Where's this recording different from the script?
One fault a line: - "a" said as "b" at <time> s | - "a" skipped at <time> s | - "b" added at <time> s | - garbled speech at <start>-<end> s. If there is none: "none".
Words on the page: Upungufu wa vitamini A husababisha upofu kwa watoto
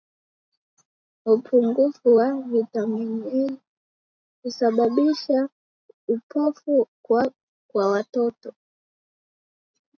none